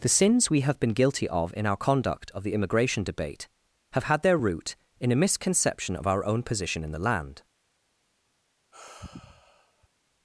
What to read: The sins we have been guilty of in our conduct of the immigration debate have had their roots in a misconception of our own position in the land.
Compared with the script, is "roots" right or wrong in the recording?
wrong